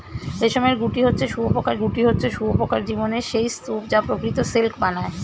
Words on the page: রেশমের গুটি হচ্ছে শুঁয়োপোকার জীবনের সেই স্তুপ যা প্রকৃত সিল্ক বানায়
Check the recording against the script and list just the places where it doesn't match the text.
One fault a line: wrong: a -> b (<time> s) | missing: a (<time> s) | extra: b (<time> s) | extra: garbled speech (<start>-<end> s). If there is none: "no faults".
extra: গুটি হচ্ছে শুঁয়োপোকার (1.8 s)